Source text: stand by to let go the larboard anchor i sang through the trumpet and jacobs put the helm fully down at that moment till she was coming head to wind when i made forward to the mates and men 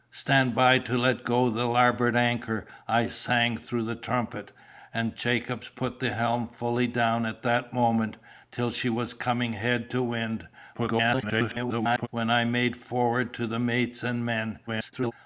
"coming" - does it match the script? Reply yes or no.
yes